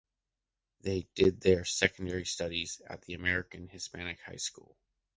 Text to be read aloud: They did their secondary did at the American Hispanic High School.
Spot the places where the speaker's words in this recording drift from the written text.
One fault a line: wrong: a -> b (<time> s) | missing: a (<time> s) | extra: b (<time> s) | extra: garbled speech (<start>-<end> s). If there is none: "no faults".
wrong: did -> studies (2.2 s)